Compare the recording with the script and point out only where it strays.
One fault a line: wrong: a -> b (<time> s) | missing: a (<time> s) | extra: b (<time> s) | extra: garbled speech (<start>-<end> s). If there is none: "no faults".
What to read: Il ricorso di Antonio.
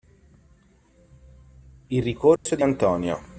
no faults